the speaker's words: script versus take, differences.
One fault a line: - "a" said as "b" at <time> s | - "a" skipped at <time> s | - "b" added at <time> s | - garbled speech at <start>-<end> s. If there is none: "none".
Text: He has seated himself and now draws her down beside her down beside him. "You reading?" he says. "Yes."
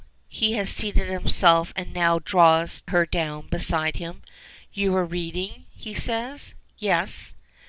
- "her down beside" skipped at 4.0 s
- "were" added at 4.9 s